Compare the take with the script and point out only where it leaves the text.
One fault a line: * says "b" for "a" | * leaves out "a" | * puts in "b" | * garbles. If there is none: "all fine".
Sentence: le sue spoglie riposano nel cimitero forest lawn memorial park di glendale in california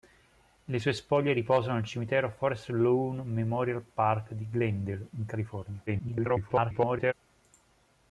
* garbles